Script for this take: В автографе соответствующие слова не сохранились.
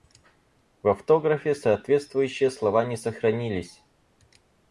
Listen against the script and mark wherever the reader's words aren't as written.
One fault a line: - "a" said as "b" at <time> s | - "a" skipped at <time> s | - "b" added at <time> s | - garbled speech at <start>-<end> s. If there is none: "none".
none